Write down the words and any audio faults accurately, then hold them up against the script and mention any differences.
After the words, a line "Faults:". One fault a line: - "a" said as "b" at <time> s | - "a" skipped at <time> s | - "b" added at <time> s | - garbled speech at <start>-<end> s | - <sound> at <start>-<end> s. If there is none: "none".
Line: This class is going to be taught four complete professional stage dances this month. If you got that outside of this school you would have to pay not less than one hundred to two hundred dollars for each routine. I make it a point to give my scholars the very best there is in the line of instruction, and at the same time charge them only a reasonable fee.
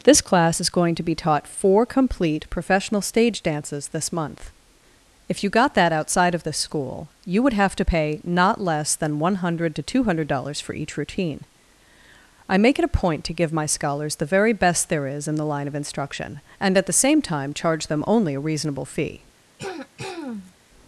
This class is going to be taught four complete professional stage dances this month. If you got that outside of this school you would have to pay not less than one hundred to two hundred dollars for each routine. I make it a point to give my scholars the very best there is in the line of instruction, and at the same time charge them only a reasonable fee.
Faults:
- throat clearing at 19.6-20.6 s